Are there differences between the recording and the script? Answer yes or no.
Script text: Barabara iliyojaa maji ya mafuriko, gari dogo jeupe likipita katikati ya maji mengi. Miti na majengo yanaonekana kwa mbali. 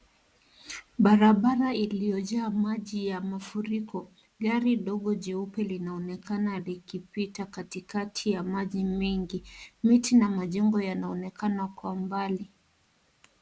yes